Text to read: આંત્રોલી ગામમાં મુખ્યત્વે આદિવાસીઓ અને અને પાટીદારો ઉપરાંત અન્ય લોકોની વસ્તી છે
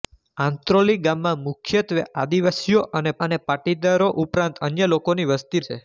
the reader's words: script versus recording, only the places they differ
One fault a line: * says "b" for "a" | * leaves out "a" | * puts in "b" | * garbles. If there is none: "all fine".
all fine